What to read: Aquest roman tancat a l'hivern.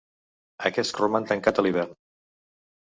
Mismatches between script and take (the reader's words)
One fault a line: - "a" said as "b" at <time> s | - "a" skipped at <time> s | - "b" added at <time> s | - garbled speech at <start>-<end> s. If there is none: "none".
none